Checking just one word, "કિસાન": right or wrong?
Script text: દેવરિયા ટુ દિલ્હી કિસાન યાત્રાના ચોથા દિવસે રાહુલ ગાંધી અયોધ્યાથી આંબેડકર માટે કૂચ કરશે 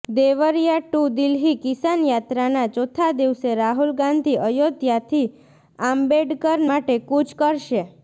right